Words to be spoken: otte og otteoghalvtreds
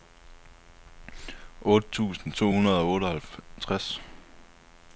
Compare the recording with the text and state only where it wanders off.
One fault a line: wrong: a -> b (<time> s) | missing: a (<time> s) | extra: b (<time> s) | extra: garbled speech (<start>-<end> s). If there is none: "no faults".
extra: tusind to hundrede (1.9 s)